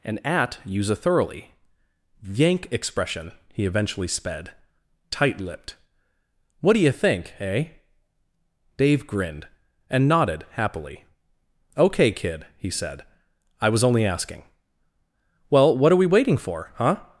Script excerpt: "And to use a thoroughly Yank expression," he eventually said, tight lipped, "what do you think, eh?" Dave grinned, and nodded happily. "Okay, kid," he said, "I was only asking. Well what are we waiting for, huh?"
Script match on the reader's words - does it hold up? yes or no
no